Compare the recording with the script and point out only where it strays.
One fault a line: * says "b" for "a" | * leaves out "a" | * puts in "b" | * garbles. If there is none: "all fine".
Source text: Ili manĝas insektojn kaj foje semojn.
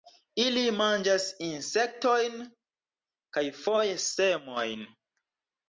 all fine